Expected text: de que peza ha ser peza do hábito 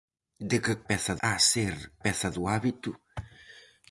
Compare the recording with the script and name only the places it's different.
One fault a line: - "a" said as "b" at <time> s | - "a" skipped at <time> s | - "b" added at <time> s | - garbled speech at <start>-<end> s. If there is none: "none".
none